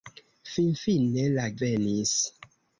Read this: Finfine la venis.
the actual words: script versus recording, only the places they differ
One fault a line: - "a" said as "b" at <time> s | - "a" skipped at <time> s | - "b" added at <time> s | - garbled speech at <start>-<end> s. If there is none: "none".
none